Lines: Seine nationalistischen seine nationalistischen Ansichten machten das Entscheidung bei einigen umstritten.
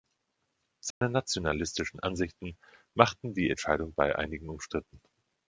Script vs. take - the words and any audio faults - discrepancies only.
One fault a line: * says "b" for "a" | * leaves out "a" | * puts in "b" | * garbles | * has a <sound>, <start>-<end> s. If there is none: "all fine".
* has a dropout, 0.9-1.0 s
* leaves out "seine nationalistischen"
* says "die" for "das"